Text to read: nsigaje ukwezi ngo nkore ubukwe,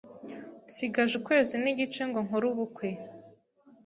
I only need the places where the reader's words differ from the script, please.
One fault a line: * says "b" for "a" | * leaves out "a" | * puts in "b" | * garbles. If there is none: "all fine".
* puts in "n'igice"